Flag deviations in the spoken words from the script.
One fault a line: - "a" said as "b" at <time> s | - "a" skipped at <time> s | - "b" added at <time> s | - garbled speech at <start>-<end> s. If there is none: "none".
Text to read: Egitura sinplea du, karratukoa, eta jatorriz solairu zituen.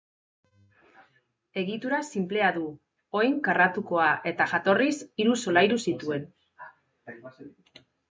- "oin" added at 3.2 s
- "hiru" added at 5.2 s